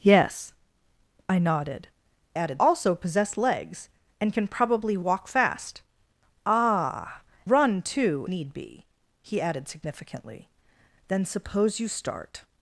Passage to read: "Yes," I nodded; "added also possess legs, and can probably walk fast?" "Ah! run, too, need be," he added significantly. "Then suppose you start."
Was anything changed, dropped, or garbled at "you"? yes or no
no